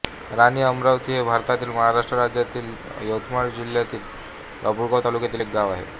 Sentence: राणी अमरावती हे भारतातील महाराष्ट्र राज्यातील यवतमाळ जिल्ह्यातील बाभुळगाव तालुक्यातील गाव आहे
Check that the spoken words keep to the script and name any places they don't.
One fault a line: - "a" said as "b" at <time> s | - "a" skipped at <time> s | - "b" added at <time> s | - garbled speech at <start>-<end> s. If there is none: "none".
- "एक" added at 5.4 s